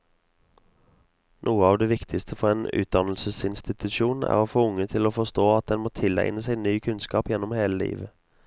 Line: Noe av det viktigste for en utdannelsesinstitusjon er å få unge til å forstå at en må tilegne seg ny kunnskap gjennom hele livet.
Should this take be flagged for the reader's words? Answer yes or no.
no